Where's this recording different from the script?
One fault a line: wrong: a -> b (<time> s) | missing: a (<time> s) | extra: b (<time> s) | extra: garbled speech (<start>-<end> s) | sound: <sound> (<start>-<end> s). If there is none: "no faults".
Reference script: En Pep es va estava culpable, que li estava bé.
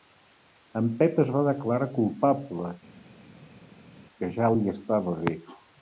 wrong: estava -> declarar (1.5 s)
extra: ja (4.4 s)